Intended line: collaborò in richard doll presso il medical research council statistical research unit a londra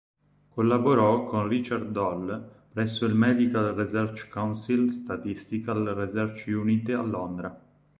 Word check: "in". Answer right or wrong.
wrong